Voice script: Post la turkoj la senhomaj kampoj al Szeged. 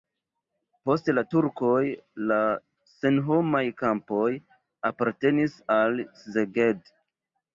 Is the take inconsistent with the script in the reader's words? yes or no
yes